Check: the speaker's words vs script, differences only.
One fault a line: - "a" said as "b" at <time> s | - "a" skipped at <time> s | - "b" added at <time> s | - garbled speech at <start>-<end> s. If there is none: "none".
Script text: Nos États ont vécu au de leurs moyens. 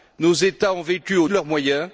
none